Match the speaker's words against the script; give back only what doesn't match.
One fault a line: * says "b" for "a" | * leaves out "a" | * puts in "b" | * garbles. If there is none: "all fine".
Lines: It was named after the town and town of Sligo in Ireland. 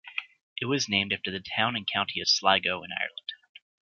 * says "county" for "town"